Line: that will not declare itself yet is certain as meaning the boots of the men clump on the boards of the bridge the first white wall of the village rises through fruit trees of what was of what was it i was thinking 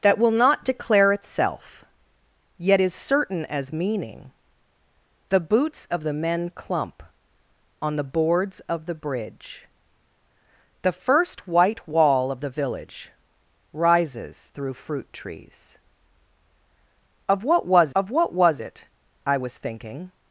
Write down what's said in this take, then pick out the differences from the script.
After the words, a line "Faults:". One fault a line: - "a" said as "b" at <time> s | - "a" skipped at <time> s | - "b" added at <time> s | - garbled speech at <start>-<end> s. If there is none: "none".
that will not declare itself yet is certain as meaning the boots of the men clump on the boards of the bridge the first white wall of the village rises through fruit trees of what was of what was it i was thinking
Faults:
none